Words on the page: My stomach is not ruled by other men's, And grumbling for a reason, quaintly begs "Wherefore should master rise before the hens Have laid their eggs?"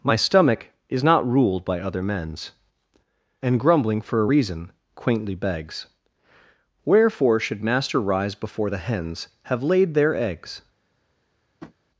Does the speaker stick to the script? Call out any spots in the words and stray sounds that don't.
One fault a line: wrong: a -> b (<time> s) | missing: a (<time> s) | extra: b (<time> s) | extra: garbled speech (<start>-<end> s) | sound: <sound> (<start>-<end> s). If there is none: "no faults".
sound: tap (11.6-11.8 s)